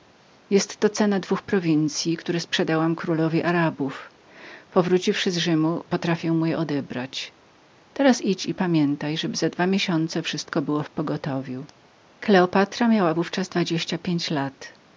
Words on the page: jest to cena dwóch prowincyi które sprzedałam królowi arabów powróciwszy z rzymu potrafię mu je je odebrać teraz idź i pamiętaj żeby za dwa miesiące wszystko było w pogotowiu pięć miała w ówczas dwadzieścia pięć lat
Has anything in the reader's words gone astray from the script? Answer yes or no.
yes